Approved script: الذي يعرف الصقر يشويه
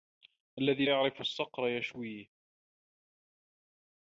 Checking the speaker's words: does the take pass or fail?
pass